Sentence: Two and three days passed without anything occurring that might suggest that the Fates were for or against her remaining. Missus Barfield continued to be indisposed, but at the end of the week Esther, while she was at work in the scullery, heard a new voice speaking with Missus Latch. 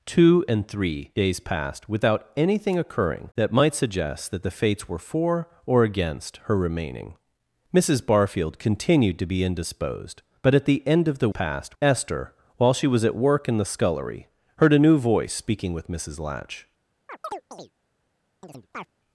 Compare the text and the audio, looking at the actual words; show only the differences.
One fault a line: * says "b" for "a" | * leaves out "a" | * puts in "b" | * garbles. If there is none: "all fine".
* says "passed" for "week"